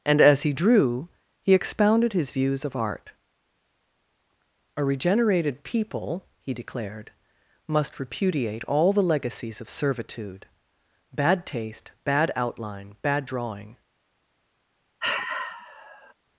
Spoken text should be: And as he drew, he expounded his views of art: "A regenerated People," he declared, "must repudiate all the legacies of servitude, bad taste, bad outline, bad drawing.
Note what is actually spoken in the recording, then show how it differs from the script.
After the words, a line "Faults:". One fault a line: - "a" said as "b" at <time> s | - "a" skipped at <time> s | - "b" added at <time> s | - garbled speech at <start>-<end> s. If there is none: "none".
And as he drew, he expounded his views of art: "A regenerated People," he declared, "must repudiate all the legacies of servitude, bad taste, bad outline, bad drawing.
Faults:
none